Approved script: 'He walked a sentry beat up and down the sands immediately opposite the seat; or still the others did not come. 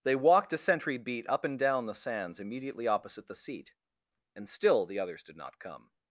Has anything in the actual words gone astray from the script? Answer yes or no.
yes